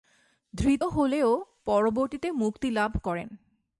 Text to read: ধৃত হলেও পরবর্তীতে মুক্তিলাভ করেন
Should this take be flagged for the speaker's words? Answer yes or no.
no